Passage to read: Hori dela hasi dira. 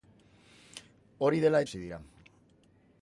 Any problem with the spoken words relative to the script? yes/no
no